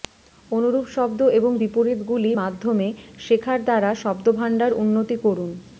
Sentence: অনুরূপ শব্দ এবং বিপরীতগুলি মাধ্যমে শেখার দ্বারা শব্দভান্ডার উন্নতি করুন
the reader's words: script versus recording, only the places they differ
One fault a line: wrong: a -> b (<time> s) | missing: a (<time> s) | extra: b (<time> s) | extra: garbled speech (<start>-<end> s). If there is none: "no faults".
no faults